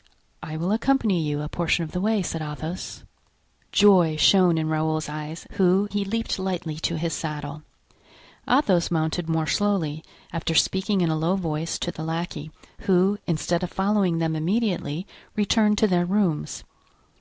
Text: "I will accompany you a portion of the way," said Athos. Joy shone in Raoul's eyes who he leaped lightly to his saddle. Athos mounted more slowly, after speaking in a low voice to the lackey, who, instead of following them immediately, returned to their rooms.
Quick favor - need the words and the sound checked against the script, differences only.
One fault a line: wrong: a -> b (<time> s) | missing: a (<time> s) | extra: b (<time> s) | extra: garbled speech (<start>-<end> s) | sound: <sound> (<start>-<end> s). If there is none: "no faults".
no faults